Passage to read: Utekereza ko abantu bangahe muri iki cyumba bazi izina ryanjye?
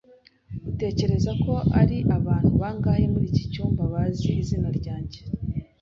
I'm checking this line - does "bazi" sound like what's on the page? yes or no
yes